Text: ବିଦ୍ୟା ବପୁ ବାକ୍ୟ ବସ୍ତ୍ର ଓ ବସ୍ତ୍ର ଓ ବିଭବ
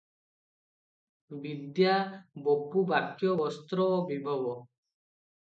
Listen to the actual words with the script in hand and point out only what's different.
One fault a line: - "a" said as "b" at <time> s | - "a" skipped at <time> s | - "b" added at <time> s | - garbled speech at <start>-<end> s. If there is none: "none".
- "ବସ୍ତ୍ର ଓ" skipped at 4.0 s